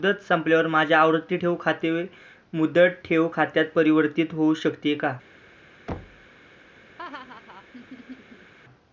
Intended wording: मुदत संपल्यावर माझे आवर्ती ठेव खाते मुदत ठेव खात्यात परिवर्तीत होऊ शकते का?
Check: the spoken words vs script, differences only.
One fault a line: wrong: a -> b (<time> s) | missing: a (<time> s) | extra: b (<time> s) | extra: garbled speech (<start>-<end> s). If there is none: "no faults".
no faults